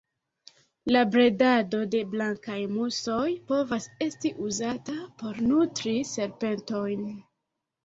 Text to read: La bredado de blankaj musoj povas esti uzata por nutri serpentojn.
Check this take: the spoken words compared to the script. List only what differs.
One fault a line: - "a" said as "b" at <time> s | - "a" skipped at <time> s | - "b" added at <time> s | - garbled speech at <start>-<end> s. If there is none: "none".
none